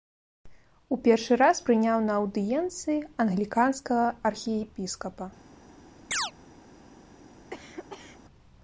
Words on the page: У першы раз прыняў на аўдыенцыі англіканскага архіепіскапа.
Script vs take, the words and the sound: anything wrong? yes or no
yes